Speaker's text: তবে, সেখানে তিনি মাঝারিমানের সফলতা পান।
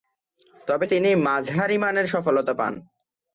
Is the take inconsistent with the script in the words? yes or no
yes